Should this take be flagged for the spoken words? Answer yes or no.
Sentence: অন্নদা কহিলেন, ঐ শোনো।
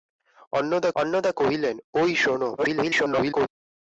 yes